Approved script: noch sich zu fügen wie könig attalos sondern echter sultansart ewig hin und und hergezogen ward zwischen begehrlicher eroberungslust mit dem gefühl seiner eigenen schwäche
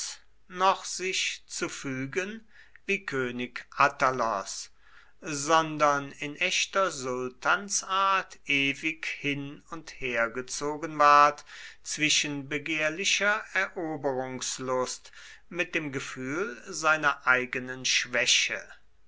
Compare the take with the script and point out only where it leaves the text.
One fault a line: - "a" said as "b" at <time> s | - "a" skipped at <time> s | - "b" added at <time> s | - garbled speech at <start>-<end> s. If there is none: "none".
- "in" added at 6.1 s
- "und" skipped at 10.0 s